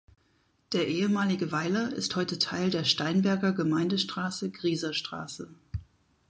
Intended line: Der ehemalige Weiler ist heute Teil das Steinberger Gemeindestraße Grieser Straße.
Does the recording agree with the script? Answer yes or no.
no